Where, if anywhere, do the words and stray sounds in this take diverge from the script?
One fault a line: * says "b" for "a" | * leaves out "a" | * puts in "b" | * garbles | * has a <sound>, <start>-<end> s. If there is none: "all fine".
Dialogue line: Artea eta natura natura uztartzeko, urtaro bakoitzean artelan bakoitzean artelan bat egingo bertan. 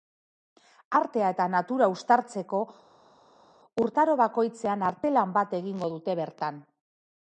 * leaves out "natura"
* leaves out "bakoitzean artelan"
* puts in "dute"